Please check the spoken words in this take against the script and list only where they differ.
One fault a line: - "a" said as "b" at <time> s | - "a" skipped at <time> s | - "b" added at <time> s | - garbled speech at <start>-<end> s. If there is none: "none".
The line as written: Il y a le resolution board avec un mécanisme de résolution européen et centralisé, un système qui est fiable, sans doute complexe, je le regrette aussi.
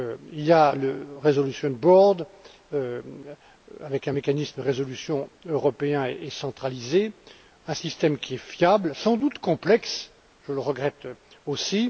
none